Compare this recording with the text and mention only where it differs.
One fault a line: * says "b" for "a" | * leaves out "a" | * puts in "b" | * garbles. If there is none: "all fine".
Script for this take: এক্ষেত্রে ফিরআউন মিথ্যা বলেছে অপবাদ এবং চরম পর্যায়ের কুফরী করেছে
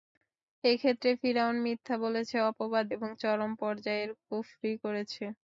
all fine